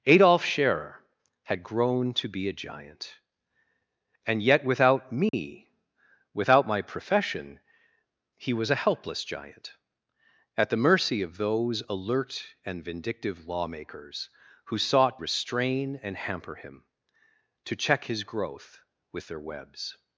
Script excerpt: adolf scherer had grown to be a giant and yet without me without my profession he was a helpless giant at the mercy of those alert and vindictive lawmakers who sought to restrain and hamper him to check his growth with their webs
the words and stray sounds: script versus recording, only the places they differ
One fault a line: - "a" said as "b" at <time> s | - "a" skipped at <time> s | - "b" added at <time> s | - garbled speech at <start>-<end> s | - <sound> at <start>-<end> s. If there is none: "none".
- dropout at 5.3-5.3 s
- "to" skipped at 15.2 s